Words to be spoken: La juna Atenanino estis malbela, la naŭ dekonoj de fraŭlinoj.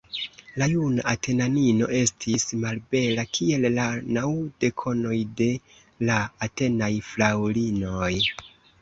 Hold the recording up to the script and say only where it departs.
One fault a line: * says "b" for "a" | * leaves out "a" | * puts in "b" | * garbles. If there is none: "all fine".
* puts in "kiel"
* puts in "la Atenaj"